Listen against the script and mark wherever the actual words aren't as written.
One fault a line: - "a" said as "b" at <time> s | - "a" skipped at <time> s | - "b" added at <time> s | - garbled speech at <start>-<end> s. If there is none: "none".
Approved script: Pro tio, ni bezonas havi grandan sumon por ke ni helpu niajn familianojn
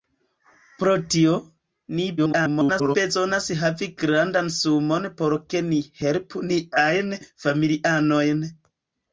- garbled speech at 2.2-3.0 s